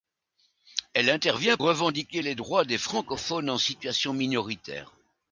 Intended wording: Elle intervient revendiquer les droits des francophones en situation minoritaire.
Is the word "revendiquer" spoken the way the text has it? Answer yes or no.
yes